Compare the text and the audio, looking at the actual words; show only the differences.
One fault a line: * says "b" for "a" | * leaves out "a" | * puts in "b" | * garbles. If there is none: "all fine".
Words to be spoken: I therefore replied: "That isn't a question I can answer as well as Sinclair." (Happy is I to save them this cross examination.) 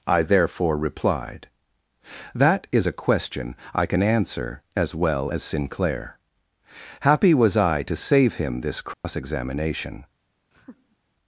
* says "is" for "isn't"
* says "was" for "is"
* says "him" for "them"